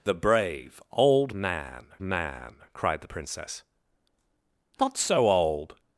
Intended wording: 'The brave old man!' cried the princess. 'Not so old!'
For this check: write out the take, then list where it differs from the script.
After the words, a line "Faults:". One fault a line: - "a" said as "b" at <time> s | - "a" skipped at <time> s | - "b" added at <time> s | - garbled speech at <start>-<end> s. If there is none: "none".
'The brave old man man!' cried the princess. 'Not so old!'
Faults:
- "man" added at 2.0 s